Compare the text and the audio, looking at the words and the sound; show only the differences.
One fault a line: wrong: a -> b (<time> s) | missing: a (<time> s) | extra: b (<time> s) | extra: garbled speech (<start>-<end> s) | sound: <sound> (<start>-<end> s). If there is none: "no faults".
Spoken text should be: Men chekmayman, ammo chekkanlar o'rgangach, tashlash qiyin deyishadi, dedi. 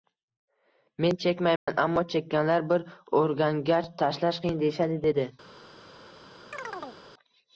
sound: dropout (1.6-1.7 s)
extra: bir (2.7 s)
sound: chirp (6.5-7.0 s)